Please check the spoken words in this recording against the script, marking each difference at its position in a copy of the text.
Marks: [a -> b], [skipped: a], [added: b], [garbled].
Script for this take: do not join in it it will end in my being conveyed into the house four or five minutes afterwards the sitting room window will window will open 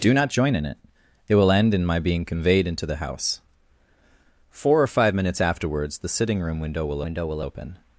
do not join in it it will end in my being conveyed into the house four or five minutes afterwards the sitting room window will window will open